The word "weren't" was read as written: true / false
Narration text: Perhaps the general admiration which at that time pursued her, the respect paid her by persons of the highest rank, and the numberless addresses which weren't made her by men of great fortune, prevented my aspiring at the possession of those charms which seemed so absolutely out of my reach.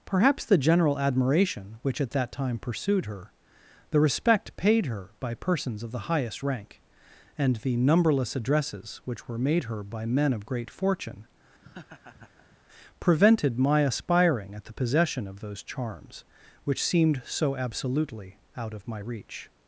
false